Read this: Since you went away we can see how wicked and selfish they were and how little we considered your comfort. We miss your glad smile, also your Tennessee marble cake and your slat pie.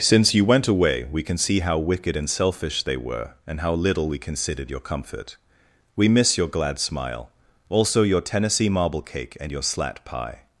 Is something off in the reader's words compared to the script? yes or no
no